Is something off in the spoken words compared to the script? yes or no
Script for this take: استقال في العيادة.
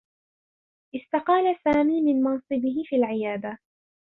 yes